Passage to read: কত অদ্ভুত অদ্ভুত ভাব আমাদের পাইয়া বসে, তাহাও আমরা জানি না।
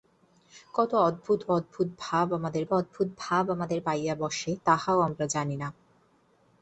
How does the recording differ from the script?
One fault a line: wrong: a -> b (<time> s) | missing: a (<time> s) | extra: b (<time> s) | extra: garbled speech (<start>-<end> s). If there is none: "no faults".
extra: অদ্ভুত ভাব আমাদের (2.7 s)